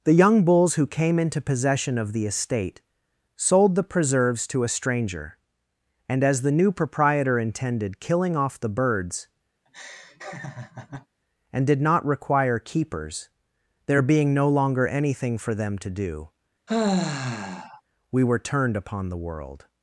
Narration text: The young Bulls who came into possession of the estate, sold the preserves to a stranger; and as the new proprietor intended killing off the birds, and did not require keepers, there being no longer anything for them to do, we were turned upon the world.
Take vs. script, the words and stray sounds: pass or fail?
fail